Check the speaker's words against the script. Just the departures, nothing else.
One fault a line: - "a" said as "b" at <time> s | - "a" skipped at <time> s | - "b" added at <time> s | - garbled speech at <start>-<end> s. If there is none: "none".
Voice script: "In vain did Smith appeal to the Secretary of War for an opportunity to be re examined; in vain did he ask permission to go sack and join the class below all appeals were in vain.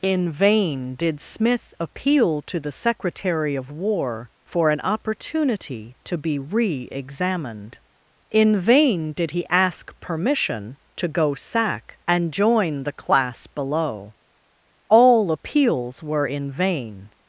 none